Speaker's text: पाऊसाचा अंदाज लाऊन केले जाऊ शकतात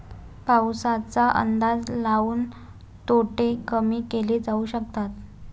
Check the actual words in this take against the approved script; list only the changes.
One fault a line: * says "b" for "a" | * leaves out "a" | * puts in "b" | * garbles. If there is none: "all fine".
* puts in "तोटे कमी"